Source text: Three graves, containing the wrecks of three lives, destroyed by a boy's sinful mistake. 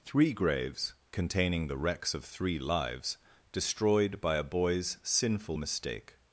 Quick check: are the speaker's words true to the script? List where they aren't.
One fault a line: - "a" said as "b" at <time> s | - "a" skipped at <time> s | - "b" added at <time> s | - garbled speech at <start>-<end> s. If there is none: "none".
none